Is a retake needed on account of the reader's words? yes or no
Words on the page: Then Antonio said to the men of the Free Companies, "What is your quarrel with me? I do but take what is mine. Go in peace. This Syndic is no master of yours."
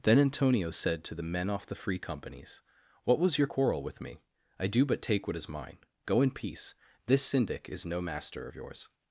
yes